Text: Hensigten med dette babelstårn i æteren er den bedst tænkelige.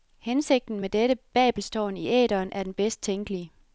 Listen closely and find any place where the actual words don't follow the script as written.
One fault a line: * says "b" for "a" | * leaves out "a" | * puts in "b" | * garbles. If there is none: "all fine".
all fine